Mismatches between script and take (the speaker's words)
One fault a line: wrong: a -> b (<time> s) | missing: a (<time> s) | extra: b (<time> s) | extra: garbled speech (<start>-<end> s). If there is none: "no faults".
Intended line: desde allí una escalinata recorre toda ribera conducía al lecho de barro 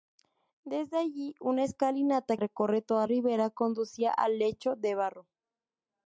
no faults